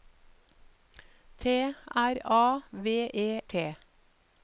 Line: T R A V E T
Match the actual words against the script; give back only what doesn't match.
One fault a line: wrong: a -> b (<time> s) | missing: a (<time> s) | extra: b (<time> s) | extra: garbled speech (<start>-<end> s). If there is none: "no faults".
no faults